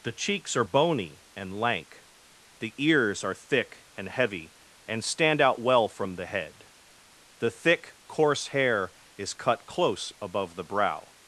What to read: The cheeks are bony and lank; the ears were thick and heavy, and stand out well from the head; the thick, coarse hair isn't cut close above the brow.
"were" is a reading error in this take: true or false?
true